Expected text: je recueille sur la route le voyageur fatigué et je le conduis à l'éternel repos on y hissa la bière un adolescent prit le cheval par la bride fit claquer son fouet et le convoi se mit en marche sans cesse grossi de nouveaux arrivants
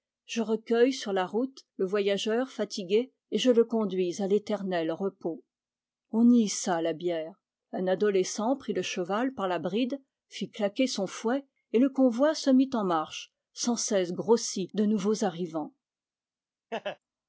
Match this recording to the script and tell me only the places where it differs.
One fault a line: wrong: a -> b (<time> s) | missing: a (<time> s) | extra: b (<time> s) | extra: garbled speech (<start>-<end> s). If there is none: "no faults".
no faults